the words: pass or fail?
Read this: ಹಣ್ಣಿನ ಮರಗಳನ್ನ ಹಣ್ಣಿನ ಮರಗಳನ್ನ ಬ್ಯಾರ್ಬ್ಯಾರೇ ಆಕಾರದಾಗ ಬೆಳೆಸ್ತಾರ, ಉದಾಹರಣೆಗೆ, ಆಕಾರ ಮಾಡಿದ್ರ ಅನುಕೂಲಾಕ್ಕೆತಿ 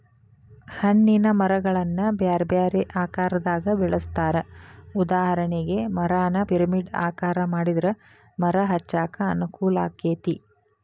fail